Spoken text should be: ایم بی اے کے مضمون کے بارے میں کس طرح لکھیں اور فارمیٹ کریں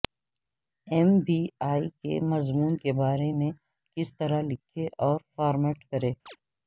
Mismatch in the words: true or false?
false